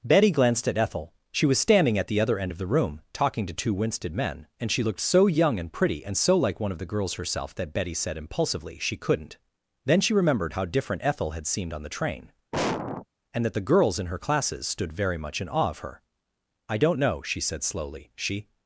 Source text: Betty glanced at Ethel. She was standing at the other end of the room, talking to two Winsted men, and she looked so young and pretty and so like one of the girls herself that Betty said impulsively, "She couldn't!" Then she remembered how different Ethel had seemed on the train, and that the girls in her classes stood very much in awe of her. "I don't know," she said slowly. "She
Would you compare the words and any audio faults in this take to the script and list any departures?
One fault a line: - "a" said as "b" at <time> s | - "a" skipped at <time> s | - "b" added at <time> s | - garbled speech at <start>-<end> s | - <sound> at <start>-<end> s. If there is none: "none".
- sniff at 12.5-13.1 s